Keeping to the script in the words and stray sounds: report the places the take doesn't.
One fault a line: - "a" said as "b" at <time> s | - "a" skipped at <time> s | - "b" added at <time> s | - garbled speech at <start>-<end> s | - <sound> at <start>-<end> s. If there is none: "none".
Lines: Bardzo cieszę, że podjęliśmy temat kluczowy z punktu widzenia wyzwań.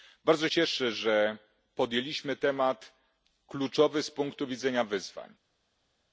none